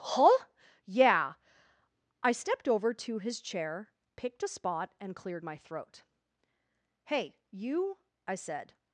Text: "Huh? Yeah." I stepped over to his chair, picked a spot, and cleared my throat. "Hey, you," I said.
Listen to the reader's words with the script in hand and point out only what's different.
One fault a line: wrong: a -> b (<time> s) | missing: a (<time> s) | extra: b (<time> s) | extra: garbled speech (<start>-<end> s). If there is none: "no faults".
no faults